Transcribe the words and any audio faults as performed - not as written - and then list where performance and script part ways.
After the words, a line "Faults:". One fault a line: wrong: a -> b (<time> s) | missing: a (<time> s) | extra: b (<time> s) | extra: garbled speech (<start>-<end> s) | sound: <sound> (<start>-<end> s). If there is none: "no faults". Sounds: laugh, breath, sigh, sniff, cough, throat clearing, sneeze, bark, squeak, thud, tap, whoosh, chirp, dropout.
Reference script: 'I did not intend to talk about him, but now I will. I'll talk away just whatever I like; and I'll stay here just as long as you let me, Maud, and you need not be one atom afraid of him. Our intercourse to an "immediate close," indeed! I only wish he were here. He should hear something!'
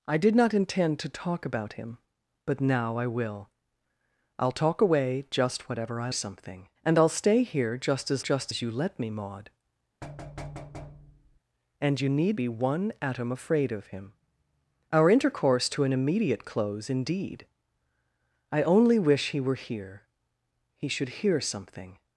'I did not intend to talk about him, but now I will. I'll talk away just whatever I something; and I'll stay here just as just as you let me, Maud, and you need be one atom afraid of him. Our intercourse to an "immediate close," indeed! I only wish he were here. He should hear something!'
Faults:
wrong: like -> something (6.1 s)
wrong: long -> just (8.2 s)
sound: thud (10.0-11.4 s)
missing: not (12.4 s)